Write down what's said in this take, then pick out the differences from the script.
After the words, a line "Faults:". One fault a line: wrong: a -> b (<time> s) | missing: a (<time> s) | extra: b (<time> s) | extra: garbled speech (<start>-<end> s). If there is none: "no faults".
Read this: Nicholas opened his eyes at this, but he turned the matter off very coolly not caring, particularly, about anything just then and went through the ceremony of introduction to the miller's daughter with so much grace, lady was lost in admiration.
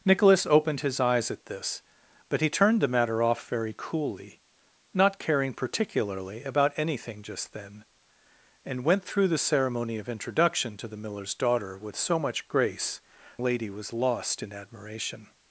Nicholas opened his eyes at this, but he turned the matter off very coolly not caring, particularly, about anything just then and went through the ceremony of introduction to the miller's daughter with so much grace, lady was lost in admiration.
Faults:
no faults